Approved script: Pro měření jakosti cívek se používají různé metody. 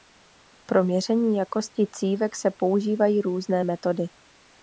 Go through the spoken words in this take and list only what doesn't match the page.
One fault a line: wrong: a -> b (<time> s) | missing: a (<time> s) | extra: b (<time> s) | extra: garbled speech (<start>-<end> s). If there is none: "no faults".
no faults